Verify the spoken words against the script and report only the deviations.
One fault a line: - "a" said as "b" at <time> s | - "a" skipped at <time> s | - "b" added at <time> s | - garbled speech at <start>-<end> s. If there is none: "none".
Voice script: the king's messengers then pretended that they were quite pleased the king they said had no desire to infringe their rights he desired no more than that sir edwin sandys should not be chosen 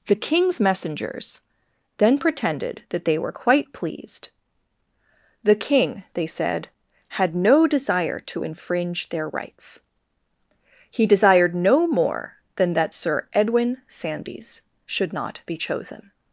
none